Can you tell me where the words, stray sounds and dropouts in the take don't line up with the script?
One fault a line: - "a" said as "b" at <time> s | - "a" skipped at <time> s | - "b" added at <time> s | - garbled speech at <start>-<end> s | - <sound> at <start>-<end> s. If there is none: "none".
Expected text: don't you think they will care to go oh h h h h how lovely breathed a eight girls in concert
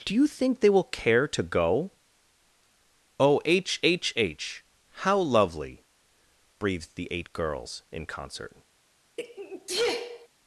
- "don't" said as "do" at 0.0 s
- "h" skipped at 4.7 s
- "a" said as "the" at 7.0 s
- sneeze at 9.2-10.3 s